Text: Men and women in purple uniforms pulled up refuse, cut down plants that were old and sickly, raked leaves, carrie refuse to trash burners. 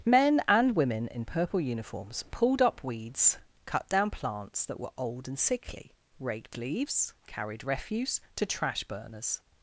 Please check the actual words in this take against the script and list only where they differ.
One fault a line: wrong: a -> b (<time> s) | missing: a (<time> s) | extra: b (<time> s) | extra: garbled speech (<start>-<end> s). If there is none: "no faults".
wrong: refuse -> weeds (2.8 s)
wrong: carrie -> carried (7.3 s)